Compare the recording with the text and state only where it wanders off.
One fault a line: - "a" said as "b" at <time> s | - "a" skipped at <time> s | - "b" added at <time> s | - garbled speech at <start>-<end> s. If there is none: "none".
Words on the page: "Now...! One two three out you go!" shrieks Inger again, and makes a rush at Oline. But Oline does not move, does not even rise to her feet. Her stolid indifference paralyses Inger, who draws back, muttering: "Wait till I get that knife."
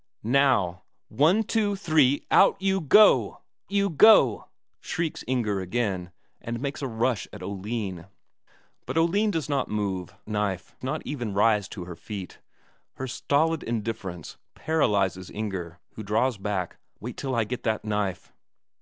- "you go" added at 3.7 s
- "does" said as "knife" at 10.3 s
- "muttering" skipped at 16.8 s